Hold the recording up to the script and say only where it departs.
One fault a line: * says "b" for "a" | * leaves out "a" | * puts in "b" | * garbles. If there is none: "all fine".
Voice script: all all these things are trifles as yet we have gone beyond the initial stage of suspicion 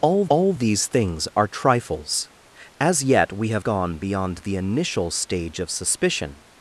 all fine